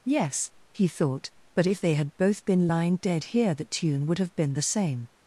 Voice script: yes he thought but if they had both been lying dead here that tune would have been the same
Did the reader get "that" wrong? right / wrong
wrong